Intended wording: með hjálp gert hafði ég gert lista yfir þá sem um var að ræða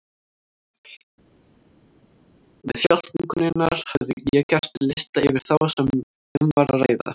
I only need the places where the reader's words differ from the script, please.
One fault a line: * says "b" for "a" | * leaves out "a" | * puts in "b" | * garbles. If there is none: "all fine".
* says "vinkonunnar" for "gert"